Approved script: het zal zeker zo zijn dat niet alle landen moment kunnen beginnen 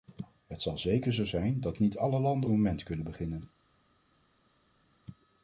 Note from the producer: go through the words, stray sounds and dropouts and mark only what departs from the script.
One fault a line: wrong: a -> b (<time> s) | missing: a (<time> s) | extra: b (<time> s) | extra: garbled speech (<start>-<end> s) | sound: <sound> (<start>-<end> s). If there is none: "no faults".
no faults